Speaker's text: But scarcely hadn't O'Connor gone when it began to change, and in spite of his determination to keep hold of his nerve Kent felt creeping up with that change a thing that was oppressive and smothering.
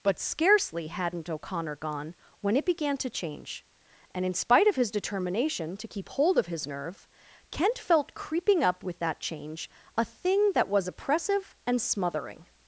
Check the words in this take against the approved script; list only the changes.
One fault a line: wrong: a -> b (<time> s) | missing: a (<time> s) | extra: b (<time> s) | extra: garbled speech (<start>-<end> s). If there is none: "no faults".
no faults